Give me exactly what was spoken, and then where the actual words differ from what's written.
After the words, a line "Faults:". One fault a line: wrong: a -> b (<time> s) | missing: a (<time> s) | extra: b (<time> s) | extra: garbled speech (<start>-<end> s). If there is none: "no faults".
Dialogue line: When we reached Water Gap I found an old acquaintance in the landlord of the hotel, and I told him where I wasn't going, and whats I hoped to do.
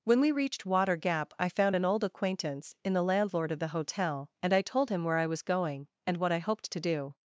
When we reached Water Gap I found an old acquaintance in the landlord of the hotel, and I told him where I was going, and what I hoped to do.
Faults:
wrong: wasn't -> was (5.3 s)
wrong: whats -> what (6.2 s)